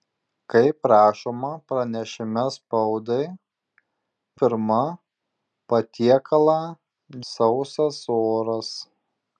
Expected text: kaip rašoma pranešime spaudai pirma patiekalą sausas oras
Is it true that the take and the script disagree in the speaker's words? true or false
false